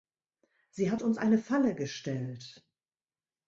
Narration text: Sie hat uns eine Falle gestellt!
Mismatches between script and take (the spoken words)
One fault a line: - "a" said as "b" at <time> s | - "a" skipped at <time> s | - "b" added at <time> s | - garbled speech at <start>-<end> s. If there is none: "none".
none